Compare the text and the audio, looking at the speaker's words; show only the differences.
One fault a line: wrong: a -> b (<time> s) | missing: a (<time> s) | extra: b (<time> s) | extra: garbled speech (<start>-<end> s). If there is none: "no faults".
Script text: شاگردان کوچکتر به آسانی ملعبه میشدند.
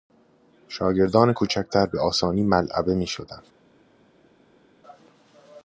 no faults